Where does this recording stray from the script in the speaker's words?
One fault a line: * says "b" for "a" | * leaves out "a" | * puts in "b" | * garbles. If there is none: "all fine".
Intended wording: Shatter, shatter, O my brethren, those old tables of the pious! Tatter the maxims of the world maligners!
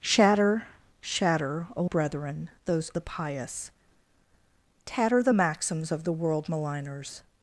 * leaves out "my"
* leaves out "old tables of"